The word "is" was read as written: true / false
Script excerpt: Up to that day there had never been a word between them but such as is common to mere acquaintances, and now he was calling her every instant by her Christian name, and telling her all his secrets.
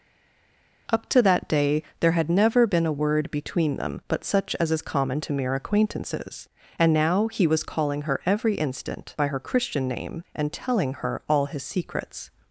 true